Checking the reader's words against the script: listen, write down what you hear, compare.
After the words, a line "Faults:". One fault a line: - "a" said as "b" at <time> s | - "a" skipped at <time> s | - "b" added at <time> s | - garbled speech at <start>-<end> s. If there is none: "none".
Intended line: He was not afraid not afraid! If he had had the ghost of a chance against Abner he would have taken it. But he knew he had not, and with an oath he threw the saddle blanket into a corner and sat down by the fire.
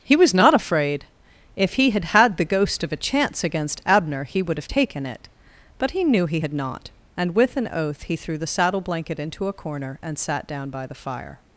He was not afraid! If he had had the ghost of a chance against Abner he would have taken it. But he knew he had not, and with an oath he threw the saddle blanket into a corner and sat down by the fire.
Faults:
- "not afraid" skipped at 1.1 s